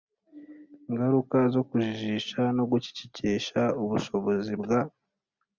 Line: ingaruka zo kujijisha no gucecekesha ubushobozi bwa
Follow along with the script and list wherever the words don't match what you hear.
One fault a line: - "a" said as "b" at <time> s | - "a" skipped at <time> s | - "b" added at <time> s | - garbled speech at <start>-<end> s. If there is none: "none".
none